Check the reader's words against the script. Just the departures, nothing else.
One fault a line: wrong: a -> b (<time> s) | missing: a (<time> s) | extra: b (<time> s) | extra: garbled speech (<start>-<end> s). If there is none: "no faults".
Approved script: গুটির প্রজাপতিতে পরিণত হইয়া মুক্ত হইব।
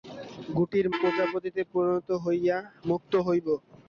no faults